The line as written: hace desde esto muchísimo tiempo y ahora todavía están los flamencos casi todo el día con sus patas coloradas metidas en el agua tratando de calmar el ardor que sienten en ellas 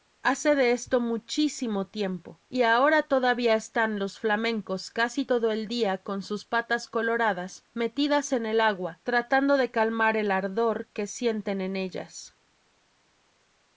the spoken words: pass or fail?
fail